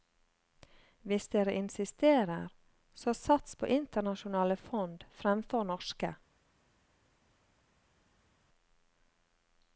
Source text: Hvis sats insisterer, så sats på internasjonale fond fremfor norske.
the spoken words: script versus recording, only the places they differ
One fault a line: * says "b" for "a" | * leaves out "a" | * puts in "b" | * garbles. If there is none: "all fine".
* says "dere" for "sats"